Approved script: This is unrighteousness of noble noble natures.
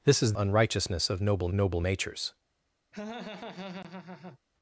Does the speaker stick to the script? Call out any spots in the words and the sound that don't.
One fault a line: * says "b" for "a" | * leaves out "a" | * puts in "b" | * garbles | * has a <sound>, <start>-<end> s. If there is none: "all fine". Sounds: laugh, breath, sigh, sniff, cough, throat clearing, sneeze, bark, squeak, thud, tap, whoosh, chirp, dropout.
* has a laugh, 2.9-4.4 s